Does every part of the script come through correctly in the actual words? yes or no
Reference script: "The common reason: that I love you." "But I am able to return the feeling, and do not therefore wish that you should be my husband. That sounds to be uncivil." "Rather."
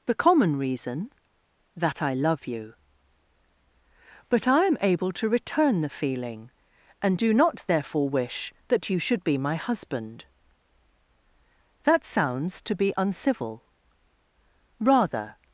yes